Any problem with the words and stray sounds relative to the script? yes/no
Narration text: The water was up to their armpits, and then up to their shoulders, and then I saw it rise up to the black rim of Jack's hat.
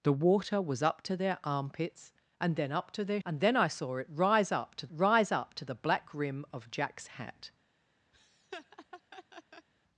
yes